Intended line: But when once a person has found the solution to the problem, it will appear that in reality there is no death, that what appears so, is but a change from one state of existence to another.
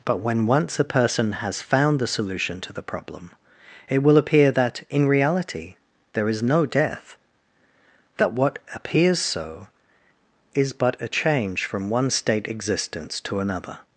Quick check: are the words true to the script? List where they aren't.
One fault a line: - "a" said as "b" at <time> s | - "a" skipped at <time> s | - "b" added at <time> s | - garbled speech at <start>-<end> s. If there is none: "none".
- "of" skipped at 12.5 s